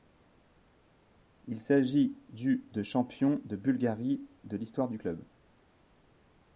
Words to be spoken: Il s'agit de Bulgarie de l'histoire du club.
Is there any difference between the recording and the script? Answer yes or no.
yes